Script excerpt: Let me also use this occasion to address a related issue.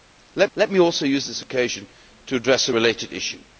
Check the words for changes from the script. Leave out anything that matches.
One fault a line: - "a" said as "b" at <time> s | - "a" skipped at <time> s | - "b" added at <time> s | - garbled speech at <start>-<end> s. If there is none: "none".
- "let" added at 0.6 s